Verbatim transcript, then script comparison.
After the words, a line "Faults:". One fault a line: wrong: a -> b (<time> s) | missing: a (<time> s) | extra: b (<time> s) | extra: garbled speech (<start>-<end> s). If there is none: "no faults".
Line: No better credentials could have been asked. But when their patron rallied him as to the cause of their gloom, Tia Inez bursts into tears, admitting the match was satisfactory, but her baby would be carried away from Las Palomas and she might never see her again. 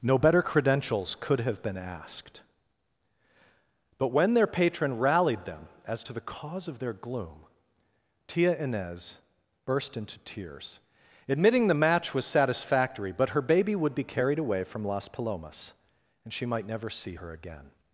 No better credentials could have been asked. But when their patron rallied them as to the cause of their gloom, Tia Inez burst into tears, admitting the match was satisfactory, but her baby would be carried away from Las Palomas and she might never see her again.
Faults:
wrong: him -> them (5.4 s)
wrong: bursts -> burst (9.6 s)